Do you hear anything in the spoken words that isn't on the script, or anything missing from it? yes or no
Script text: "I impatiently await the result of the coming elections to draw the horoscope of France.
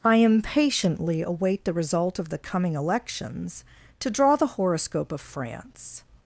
no